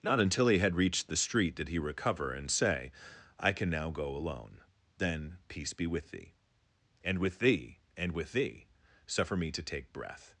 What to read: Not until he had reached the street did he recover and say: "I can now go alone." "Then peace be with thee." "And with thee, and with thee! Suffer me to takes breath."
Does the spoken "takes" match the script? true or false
false